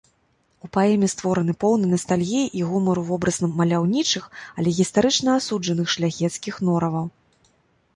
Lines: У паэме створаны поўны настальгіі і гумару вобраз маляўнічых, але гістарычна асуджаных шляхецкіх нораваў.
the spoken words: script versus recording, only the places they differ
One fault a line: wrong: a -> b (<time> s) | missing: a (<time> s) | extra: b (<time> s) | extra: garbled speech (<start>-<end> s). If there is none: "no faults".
no faults